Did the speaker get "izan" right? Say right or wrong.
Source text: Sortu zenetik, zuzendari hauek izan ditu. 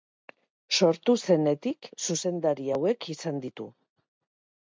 right